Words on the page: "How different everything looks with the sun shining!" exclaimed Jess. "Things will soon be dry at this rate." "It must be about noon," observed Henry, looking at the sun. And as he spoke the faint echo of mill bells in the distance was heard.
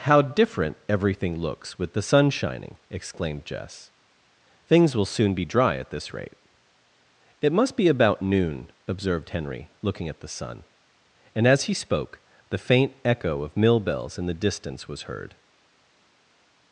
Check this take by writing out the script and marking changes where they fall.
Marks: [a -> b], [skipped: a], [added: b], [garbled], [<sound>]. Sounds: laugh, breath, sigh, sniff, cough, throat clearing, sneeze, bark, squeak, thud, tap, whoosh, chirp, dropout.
"How different everything looks with the sun shining!" exclaimed Jess. "Things will soon be dry at this rate." "It must be about noon," observed Henry, looking at the sun. And as he spoke the faint echo of mill bells in the distance was heard.